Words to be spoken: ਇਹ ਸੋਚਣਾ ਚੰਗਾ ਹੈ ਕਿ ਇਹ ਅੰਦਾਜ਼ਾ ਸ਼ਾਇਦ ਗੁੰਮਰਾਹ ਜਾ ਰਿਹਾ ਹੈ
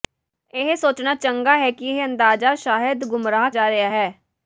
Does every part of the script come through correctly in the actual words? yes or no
yes